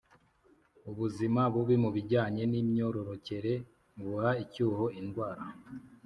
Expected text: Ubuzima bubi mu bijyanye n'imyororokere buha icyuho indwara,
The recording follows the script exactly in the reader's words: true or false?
true